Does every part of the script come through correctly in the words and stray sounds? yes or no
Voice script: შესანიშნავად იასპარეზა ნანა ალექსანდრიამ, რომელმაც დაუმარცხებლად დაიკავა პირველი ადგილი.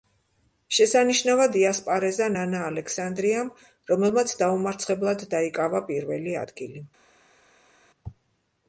yes